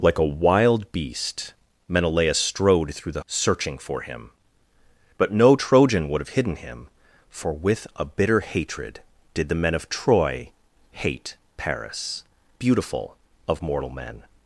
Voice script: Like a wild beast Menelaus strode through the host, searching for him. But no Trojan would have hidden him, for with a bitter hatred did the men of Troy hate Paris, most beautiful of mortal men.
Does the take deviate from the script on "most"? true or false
true